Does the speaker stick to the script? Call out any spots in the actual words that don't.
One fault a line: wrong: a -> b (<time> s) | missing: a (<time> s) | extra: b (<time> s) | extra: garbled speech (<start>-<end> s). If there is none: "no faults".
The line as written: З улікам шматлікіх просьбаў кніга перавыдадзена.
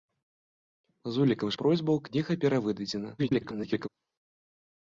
missing: шматлікіх (1.5 s)
extra: garbled speech (3.2-3.9 s)